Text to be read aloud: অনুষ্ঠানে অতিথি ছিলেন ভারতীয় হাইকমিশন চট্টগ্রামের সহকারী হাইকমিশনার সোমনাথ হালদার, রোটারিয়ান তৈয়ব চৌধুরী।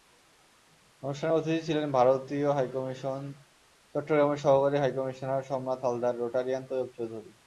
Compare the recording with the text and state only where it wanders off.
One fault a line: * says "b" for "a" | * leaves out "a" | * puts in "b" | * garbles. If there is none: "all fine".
all fine